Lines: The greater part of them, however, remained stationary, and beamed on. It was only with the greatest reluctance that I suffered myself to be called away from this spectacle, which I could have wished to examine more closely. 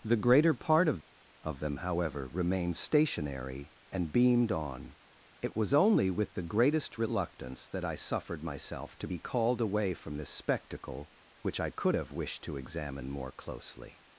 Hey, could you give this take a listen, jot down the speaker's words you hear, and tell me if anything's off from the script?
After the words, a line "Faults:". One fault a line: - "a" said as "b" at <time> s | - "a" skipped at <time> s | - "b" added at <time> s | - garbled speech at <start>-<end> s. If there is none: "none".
The greater part of of them, however, remained stationary, and beamed on. It was only with the greatest reluctance that I suffered myself to be called away from this spectacle, which I could have wished to examine more closely.
Faults:
- "of" added at 1.4 s